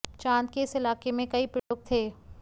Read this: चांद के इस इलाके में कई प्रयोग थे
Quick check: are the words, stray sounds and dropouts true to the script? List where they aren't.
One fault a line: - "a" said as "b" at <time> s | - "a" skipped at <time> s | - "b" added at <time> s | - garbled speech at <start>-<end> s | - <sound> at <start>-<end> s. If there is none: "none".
- dropout at 1.6-1.7 s